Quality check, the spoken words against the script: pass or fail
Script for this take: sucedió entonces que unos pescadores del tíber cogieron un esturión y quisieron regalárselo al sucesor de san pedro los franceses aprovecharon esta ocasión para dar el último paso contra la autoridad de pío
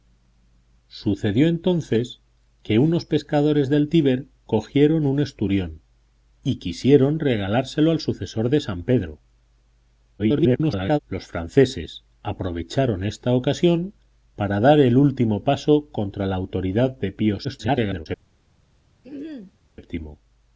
fail